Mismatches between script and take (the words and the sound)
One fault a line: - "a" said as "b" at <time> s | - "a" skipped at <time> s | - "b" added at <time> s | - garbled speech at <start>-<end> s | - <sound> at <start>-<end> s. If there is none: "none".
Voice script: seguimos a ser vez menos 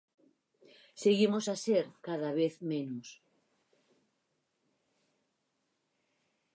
- "cada" added at 2.0 s